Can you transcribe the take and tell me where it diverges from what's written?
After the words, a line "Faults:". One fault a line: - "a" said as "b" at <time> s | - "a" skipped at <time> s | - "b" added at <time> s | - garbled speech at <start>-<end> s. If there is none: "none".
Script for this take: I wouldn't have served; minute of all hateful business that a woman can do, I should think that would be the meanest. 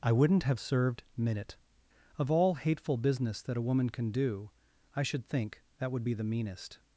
I wouldn't have served; minute of all hateful business that a woman can do, I should think that would be the meanest.
Faults:
none